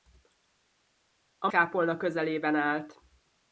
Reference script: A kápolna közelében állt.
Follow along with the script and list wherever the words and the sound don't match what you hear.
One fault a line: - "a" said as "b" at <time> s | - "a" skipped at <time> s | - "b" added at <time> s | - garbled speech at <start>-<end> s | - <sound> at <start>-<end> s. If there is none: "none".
none